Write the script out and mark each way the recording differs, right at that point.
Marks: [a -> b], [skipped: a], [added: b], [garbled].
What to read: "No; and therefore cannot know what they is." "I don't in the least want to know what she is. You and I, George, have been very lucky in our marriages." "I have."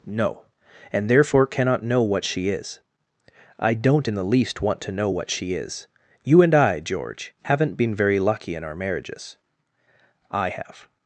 "No; and therefore cannot know what [they -> she] is." "I don't in the least want to know what she is. You and I, George, [have -> haven't] been very lucky in our marriages." "I have."